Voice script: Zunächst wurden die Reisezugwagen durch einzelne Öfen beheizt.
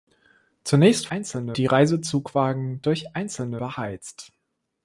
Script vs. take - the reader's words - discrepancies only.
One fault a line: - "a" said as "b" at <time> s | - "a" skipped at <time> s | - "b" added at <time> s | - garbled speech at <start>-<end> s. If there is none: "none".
- "wurden" said as "einzelne" at 1.1 s
- "Öfen" skipped at 3.6 s